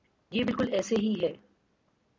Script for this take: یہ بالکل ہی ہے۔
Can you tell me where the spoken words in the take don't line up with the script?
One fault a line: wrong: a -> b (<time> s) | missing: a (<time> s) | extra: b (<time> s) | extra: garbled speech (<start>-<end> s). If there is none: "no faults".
extra: ایسے (0.7 s)